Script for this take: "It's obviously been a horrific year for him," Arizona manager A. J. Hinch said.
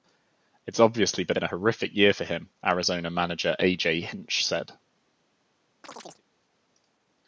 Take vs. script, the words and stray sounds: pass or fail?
fail